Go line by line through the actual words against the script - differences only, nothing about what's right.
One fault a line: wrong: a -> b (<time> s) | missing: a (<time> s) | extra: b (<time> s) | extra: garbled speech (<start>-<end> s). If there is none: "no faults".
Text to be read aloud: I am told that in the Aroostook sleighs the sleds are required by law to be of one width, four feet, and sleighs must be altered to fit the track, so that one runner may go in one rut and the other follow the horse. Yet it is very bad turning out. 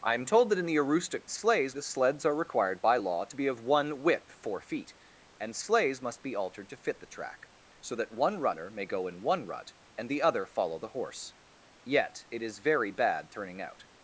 no faults